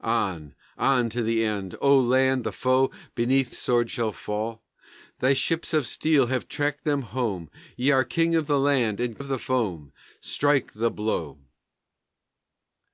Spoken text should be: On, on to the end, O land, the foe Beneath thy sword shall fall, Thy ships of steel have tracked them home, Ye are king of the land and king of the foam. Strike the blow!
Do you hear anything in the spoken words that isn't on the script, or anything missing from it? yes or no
yes